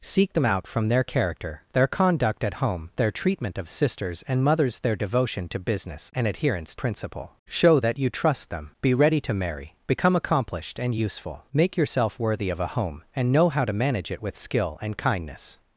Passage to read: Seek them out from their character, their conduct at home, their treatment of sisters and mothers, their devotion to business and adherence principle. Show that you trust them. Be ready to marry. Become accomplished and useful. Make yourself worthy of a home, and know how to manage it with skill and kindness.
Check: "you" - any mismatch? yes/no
no